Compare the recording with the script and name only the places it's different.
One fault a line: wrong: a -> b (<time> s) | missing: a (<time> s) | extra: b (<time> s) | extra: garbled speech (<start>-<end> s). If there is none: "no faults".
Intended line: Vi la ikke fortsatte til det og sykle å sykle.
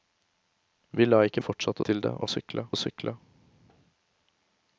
no faults